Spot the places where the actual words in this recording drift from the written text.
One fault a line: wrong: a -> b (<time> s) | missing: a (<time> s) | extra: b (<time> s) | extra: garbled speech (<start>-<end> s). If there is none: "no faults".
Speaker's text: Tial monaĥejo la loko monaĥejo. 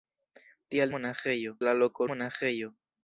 no faults